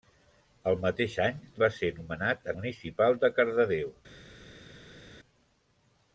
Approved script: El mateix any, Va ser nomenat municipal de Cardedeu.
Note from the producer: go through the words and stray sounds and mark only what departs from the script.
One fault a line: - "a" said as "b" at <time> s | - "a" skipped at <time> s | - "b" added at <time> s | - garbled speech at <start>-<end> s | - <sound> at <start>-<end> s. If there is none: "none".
none